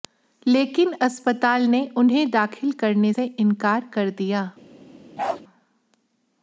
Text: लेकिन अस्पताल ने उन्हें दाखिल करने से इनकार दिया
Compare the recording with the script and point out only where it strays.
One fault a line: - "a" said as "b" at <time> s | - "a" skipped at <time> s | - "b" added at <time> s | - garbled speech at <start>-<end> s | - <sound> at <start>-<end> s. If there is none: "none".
- "कर" added at 3.9 s
- bark at 5.2-5.4 s